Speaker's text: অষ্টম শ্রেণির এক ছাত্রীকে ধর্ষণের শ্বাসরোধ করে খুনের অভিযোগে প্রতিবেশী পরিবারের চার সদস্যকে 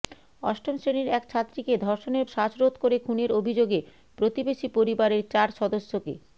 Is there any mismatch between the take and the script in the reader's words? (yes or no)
no